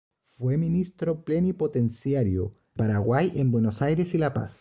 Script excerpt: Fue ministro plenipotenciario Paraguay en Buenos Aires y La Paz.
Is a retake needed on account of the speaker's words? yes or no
no